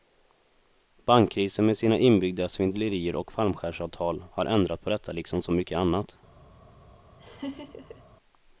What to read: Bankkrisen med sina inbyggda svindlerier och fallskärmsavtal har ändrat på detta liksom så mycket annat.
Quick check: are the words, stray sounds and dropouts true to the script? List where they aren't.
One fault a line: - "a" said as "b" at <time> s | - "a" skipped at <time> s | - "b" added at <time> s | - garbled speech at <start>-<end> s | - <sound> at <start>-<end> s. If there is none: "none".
- laugh at 7.2-8.0 s